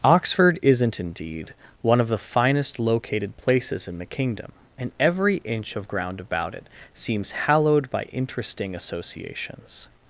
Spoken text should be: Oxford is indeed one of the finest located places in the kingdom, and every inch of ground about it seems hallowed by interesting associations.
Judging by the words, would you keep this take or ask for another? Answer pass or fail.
fail